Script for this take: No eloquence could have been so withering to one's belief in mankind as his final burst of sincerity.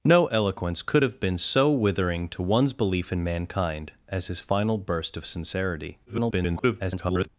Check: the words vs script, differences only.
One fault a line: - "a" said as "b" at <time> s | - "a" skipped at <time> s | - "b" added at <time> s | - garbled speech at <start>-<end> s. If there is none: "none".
- garbled speech at 6.1-7.3 s